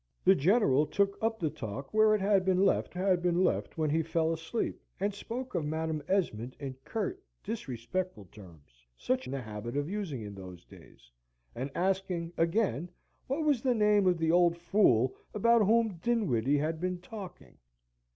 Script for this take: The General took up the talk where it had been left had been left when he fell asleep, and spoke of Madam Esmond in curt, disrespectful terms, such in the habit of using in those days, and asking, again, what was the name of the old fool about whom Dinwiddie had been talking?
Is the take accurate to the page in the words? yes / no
yes